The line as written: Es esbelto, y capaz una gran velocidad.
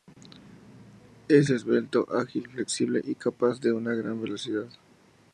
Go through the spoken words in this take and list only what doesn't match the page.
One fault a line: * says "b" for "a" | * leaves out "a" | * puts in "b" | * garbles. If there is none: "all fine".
* puts in "ágil flexible"
* puts in "de"